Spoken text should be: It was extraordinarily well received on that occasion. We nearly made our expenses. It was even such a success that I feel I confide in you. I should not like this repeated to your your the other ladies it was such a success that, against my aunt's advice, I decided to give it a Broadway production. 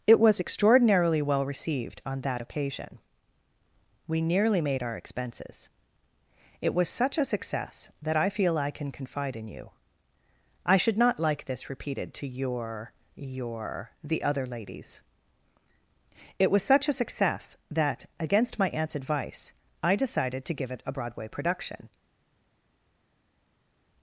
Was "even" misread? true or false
true